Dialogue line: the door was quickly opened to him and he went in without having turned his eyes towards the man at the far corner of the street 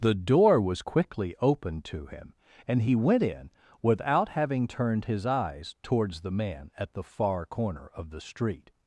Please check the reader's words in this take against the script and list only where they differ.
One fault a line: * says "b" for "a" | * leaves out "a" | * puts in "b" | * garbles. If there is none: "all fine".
all fine